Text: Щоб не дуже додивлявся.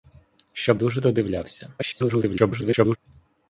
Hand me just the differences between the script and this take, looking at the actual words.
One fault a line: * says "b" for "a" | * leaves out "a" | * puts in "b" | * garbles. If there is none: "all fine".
* leaves out "не"
* garbles